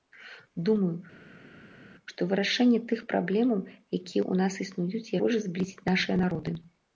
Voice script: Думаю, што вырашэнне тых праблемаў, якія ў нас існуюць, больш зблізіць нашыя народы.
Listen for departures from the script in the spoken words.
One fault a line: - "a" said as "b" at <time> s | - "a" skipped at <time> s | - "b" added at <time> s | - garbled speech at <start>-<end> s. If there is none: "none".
none